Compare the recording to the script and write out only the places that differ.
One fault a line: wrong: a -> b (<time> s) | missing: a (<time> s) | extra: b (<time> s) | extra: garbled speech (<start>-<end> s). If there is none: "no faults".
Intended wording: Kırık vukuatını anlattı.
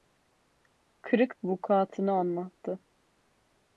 no faults